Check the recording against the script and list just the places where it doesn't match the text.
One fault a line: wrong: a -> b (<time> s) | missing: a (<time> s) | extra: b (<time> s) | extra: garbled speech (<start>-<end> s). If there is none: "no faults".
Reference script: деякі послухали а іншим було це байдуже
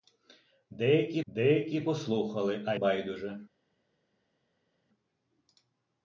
extra: деякі (1.3 s)
missing: іншим було це (2.7 s)